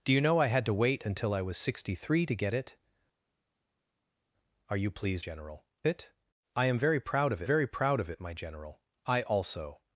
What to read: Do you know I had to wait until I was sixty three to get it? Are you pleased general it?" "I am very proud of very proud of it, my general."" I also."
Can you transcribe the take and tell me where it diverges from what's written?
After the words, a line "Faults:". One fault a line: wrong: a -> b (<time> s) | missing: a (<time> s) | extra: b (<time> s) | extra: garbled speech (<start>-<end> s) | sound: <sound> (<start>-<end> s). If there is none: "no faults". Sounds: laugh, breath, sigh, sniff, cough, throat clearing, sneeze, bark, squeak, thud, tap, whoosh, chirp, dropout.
Do you know I had to wait until I was sixty three to get it? Are you pleased general it?" "I am very proud of very proud of it, my general."" I also."
Faults:
no faults